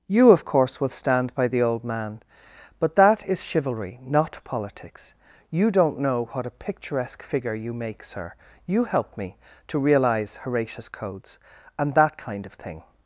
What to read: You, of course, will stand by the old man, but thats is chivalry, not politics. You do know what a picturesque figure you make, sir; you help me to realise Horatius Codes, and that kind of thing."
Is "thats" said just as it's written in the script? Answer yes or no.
no